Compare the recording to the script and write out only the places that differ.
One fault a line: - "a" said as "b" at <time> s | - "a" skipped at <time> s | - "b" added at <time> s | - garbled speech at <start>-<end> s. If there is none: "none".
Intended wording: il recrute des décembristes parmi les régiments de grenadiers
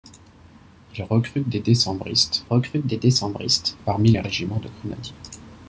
- "recrute des décembristes" added at 2.4 s